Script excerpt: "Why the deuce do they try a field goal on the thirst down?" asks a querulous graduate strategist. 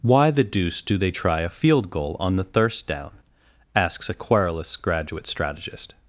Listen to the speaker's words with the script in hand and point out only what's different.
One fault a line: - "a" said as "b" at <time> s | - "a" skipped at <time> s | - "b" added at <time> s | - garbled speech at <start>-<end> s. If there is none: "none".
none